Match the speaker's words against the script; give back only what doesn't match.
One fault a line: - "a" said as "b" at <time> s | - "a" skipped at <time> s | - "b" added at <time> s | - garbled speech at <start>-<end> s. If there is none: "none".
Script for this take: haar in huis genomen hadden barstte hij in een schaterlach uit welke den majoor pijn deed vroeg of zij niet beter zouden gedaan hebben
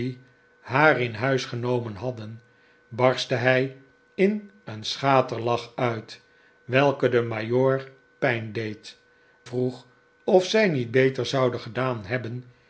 none